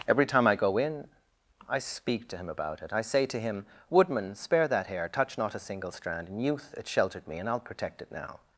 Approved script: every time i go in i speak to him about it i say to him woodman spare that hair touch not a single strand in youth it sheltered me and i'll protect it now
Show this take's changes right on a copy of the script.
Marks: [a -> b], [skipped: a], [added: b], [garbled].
every time i go in i speak to him about it i say to him woodman spare that hair touch not a single strand in youth it sheltered me and i'll protect it now